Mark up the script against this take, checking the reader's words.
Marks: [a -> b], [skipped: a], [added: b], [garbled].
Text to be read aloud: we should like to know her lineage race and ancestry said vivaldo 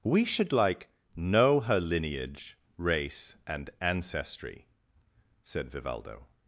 we should like [skipped: to] know her lineage race and ancestry said vivaldo